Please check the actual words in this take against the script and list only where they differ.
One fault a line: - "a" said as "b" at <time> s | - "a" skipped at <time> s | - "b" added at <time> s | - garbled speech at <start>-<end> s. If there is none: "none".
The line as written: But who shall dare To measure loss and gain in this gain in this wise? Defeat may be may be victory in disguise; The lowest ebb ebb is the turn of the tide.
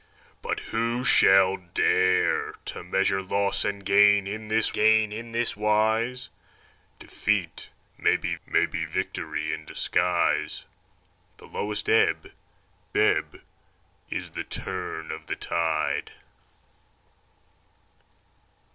none